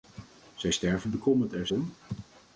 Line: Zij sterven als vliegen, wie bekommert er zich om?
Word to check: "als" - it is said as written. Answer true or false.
false